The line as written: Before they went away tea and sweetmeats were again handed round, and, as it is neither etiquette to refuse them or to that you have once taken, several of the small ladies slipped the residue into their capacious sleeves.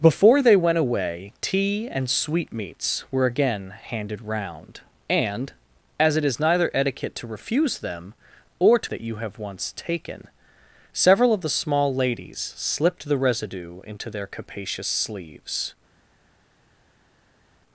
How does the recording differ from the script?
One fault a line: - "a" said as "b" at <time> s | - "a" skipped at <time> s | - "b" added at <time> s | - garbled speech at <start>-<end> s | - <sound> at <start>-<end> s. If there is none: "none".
none